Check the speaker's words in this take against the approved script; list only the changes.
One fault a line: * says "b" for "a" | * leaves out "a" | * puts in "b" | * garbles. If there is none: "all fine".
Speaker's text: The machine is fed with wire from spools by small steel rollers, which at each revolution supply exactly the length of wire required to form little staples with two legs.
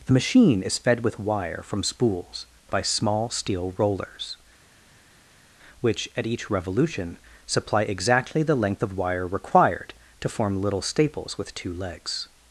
all fine